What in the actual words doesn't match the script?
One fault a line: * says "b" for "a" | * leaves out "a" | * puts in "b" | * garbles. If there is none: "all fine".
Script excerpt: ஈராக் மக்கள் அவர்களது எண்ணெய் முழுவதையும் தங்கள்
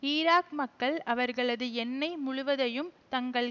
all fine